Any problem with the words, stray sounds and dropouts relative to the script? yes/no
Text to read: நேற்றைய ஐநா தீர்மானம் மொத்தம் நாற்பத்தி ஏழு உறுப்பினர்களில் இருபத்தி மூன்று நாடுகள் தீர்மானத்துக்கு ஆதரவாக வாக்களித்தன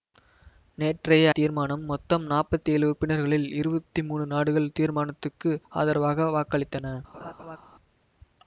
yes